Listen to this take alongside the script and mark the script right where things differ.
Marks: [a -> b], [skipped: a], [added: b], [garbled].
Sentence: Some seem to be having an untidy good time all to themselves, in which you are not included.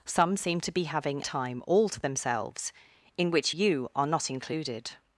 Some seem to be having [skipped: an untidy good] time all to themselves, in which you are not included.